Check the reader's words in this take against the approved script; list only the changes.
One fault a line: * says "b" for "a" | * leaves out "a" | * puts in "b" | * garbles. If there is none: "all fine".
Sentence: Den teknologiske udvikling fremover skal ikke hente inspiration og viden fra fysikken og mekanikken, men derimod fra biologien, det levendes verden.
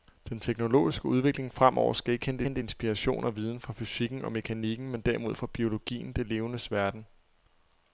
* puts in "hente"